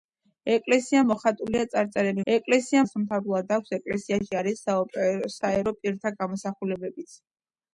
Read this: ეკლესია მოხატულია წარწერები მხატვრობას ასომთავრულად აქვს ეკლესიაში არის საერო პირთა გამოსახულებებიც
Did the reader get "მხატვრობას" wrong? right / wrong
wrong